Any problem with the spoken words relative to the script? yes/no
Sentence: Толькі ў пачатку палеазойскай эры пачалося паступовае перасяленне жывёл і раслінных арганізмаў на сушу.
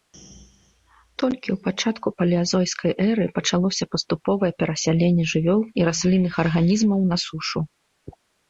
no